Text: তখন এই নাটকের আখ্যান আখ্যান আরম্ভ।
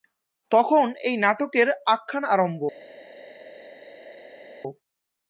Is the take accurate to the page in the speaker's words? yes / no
no